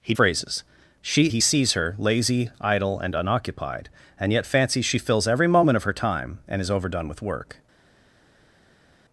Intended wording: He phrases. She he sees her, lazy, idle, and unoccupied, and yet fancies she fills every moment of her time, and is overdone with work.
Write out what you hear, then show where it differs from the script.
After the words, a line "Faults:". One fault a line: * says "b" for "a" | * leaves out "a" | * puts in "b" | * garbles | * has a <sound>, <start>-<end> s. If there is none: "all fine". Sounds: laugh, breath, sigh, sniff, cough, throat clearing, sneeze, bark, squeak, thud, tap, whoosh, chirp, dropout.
He phrases. She he sees her, lazy, idle, and unoccupied, and yet fancies she fills every moment of her time, and is overdone with work.
Faults:
all fine